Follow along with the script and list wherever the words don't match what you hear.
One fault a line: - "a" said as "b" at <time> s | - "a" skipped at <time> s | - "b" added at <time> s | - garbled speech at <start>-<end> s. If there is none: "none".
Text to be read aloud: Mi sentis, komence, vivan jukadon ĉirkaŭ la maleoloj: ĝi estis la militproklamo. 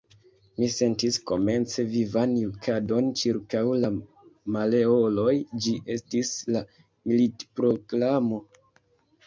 none